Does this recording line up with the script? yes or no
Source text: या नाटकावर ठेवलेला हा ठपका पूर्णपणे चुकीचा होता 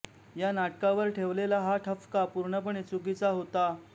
yes